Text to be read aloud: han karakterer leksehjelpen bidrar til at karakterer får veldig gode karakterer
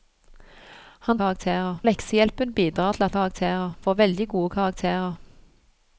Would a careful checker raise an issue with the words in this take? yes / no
no